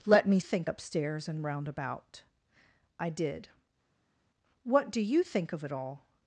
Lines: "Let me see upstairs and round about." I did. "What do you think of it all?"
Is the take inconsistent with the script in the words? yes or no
yes